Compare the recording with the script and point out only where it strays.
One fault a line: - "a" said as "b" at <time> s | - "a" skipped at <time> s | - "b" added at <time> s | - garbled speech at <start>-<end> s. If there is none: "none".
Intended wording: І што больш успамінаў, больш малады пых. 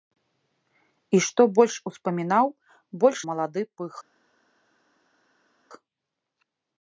none